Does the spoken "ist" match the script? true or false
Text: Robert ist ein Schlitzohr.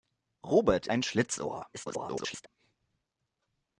false